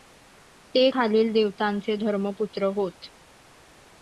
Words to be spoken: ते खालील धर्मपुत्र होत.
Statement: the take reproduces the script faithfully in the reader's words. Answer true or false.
false